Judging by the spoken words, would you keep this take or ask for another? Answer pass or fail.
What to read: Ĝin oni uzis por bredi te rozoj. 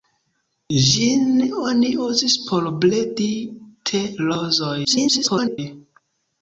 fail